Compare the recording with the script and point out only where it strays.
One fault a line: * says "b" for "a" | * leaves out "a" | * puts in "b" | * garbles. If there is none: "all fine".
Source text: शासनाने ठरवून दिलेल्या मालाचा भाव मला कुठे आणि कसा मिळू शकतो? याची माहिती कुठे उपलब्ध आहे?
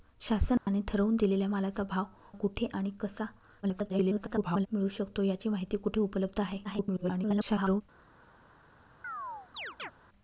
* leaves out "मला"
* garbles
* garbles